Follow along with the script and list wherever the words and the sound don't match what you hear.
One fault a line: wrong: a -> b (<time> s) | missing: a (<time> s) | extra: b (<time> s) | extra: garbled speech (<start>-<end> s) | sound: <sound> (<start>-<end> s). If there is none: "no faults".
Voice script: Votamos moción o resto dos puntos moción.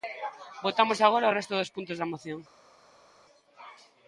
wrong: moción -> agora (1.0 s)
extra: da (2.0 s)